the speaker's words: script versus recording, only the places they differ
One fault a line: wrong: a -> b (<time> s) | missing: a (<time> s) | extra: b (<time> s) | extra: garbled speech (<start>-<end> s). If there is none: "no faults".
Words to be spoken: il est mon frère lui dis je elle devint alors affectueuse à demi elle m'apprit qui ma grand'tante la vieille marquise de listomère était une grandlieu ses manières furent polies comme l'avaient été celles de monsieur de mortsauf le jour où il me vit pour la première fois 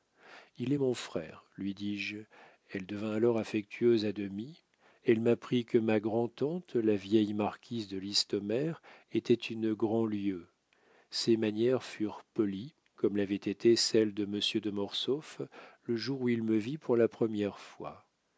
wrong: qui -> que (5.7 s)